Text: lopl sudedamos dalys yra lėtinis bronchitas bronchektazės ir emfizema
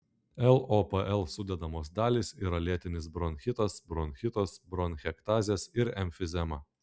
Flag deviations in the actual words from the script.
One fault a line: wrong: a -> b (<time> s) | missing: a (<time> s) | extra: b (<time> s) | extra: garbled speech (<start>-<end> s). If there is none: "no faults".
extra: bronchitas (3.9 s)